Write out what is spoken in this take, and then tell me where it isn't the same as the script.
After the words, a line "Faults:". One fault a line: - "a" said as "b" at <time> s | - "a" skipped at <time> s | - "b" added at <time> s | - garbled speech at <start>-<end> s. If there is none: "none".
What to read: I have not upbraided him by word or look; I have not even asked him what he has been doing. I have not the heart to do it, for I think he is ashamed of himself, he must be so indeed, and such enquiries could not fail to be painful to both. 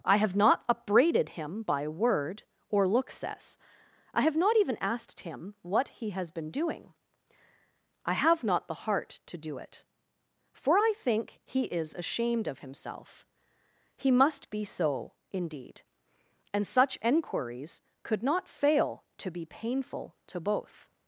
I have not upbraided him by word or look; says I have not even asked him what he has been doing. I have not the heart to do it, for I think he is ashamed of himself, he must be so indeed, and such enquiries could not fail to be painful to both.
Faults:
- "says" added at 3.1 s